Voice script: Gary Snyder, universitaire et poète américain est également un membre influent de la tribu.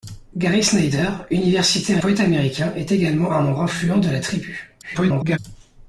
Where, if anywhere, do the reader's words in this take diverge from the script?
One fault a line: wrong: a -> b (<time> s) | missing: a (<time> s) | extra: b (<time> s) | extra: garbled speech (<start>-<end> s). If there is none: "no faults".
missing: et (2.0 s)
extra: garbled speech (4.8-5.4 s)